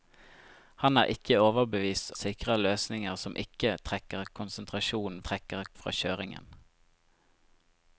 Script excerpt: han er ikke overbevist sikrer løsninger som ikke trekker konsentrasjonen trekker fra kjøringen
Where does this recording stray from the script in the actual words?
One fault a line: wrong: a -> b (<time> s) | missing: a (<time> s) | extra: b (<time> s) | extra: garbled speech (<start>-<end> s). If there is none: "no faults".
no faults